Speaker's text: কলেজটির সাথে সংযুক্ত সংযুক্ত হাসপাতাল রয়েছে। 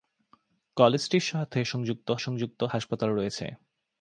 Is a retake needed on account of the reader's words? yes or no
no